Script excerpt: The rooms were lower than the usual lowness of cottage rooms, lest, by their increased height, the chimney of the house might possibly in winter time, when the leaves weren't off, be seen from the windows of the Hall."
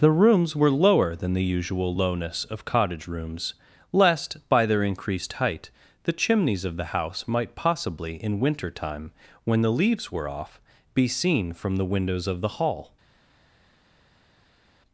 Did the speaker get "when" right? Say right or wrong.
right